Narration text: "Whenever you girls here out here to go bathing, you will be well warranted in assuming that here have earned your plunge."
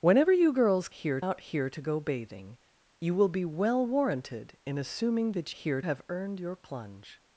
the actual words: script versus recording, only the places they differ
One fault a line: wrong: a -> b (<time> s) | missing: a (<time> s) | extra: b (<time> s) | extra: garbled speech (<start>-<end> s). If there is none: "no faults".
no faults